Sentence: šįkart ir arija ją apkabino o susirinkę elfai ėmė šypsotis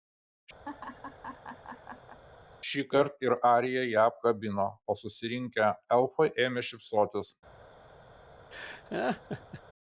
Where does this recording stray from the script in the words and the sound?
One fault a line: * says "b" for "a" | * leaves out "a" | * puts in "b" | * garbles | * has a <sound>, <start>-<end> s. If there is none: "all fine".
* has a laugh, 0.6-2.2 s
* has a laugh, 8.5-9.6 s